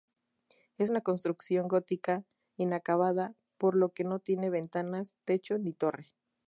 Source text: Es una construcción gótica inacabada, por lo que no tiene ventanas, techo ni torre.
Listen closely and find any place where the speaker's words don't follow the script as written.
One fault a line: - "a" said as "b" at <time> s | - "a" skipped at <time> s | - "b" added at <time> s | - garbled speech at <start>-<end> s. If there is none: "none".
none